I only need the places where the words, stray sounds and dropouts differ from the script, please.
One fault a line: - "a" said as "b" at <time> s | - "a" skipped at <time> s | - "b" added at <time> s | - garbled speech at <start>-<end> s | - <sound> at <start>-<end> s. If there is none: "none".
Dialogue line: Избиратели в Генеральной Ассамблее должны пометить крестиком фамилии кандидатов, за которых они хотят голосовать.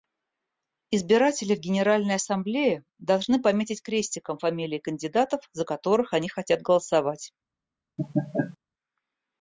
- laugh at 8.0-8.6 s